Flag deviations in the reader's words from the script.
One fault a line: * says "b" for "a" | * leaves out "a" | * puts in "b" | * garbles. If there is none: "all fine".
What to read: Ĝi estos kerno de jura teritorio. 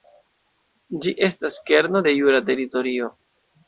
* says "estas" for "estos"